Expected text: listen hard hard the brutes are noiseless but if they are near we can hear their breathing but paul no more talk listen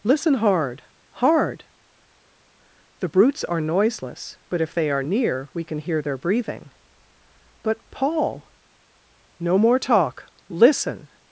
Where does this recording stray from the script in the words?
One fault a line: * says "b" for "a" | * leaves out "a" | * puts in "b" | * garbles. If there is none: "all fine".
all fine